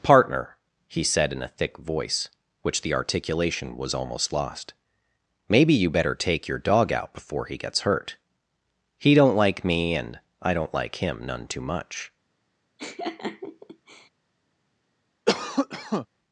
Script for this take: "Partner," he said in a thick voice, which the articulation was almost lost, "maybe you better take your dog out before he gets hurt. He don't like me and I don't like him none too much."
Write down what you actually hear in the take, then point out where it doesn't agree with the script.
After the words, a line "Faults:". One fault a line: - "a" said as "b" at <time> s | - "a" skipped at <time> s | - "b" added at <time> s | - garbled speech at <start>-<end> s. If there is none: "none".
"Partner," he said in a thick voice, which the articulation was almost lost, "maybe you better take your dog out before he gets hurt. He don't like me and I don't like him none too much."
Faults:
none